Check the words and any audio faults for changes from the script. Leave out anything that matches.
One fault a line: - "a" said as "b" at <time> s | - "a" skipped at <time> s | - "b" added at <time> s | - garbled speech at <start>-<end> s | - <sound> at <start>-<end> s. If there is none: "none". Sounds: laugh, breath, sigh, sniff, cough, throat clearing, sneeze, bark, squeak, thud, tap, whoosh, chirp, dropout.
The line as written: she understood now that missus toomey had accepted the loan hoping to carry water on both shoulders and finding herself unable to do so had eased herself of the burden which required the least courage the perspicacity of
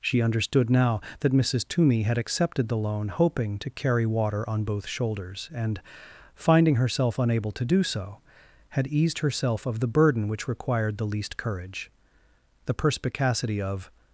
none